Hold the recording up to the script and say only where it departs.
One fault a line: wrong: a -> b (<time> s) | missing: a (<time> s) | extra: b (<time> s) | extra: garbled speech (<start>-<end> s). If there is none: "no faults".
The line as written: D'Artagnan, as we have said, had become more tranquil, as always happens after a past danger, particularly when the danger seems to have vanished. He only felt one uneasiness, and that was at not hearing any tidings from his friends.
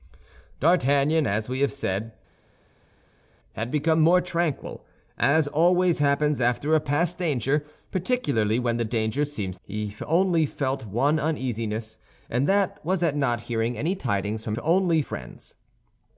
missing: to have vanished (9.6 s)
wrong: his -> only (14.6 s)